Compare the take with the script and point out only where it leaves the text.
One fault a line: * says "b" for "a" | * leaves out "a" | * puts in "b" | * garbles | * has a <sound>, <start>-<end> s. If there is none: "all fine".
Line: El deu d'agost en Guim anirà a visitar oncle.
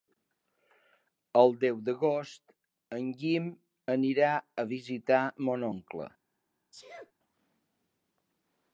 * puts in "mon"
* has a sneeze, 6.7-7.1 s